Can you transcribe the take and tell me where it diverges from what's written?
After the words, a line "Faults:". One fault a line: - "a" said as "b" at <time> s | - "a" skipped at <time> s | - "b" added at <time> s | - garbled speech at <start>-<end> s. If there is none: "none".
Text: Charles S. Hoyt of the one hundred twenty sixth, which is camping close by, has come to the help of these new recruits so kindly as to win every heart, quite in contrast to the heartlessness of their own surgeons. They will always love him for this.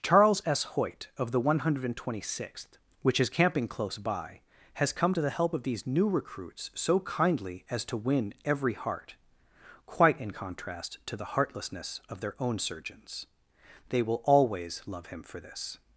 Charles S. Hoyt of the one hundred twenty sixth, which is camping close by, has come to the help of these new recruits so kindly as to win every heart, quite in contrast to the heartlessness of their own surgeons. They will always love him for this.
Faults:
none